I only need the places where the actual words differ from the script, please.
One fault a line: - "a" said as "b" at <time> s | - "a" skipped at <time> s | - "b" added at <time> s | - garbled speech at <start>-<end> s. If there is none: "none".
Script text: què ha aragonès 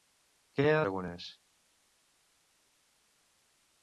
none